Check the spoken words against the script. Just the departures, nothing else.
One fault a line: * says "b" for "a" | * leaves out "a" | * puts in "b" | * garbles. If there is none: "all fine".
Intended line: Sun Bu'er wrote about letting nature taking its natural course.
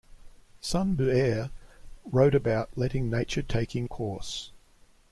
* leaves out "its natural"